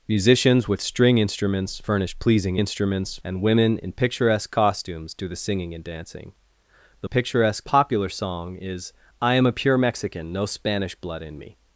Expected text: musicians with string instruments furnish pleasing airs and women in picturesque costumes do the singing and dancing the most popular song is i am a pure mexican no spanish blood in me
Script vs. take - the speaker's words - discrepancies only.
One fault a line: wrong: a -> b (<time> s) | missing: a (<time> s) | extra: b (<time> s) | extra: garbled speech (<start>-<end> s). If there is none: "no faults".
wrong: airs -> instruments (2.6 s)
wrong: most -> picturesque (7.0 s)